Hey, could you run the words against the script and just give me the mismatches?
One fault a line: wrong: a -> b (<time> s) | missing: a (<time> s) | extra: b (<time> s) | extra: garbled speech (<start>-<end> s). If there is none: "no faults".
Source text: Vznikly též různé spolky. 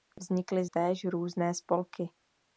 no faults